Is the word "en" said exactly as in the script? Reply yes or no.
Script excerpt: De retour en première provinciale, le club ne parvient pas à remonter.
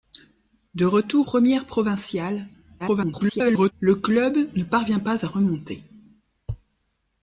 no